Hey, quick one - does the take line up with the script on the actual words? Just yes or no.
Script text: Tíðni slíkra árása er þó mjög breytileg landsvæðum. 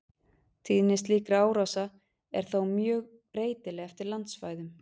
no